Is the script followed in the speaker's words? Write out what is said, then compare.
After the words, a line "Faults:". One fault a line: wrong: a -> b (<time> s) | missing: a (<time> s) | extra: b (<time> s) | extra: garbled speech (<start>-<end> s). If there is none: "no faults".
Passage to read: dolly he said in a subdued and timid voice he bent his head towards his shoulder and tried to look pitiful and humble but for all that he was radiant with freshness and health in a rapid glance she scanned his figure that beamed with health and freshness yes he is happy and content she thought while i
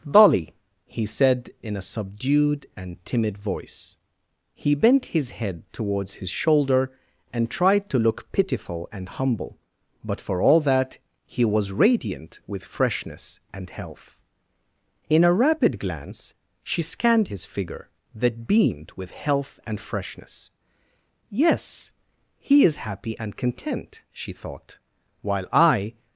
dolly he said in a subdued and timid voice he bent his head towards his shoulder and tried to look pitiful and humble but for all that he was radiant with freshness and health in a rapid glance she scanned his figure that beamed with health and freshness yes he is happy and content she thought while i
Faults:
no faults